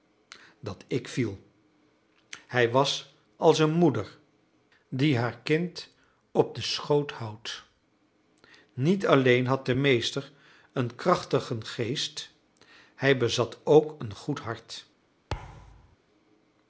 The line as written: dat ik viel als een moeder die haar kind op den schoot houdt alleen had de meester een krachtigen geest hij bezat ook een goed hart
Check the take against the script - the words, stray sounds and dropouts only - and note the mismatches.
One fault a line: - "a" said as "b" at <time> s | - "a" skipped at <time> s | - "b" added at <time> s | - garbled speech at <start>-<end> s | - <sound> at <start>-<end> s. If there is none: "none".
- "hij was" added at 2.5 s
- "niet" added at 8.7 s
- thud at 15.3-16.0 s